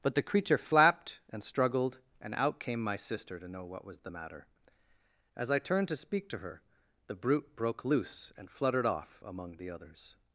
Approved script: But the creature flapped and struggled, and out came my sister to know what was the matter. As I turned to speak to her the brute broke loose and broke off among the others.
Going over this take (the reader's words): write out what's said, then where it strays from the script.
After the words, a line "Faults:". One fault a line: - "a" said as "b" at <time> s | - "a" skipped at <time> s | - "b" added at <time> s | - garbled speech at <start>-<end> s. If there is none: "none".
But the creature flapped and struggled, and out came my sister to know what was the matter. As I turned to speak to her the brute broke loose and fluttered off among the others.
Faults:
- "broke" said as "fluttered" at 8.5 s